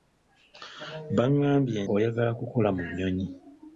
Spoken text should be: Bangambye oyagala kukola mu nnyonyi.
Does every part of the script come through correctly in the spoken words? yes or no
yes